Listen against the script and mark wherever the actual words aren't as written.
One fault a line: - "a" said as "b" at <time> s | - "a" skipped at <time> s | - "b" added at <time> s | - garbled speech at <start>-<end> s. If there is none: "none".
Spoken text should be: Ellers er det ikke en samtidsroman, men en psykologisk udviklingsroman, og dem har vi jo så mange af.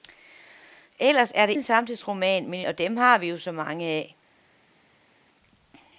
- "ikke" skipped at 1.5 s
- "en psykologisk udviklingsroman" skipped at 2.6 s